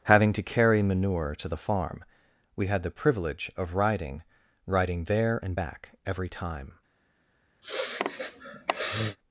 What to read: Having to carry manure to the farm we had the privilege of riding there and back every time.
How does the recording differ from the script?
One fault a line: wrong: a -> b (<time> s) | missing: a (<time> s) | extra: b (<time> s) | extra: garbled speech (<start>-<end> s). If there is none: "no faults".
extra: riding (4.7 s)